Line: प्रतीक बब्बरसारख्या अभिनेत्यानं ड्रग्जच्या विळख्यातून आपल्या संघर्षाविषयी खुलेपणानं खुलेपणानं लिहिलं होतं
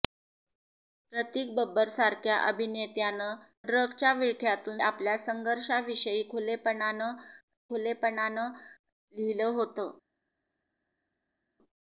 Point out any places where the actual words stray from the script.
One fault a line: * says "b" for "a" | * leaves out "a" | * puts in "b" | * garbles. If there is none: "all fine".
all fine